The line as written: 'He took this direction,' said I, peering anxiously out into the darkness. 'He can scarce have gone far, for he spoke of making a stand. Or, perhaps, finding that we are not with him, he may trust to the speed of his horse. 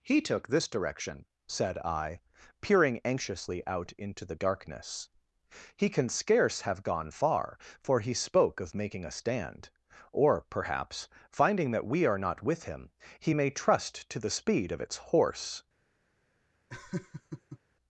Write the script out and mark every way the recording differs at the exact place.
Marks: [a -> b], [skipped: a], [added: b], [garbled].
'He took this direction,' said I, peering anxiously out into the darkness. 'He can scarce have gone far, for he spoke of making a stand. Or, perhaps, finding that we are not with him, he may trust to the speed of [his -> its] horse.